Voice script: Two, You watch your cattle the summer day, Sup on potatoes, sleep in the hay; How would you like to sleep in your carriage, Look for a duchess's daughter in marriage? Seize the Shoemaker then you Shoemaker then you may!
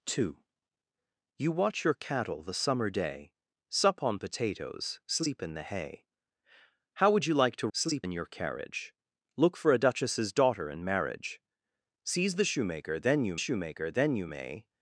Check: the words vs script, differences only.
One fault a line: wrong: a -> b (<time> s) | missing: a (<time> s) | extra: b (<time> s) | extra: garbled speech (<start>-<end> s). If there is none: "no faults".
no faults